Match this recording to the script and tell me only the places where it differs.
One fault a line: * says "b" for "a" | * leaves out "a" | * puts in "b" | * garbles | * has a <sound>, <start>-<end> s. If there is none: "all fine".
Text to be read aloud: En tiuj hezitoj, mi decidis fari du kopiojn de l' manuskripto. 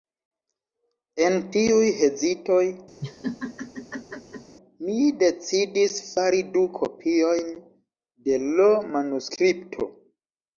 * has a laugh, 3.0-4.6 s